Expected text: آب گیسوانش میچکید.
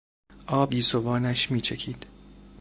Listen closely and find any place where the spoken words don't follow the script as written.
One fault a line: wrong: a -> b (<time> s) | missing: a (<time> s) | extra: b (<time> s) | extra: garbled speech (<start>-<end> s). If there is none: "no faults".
no faults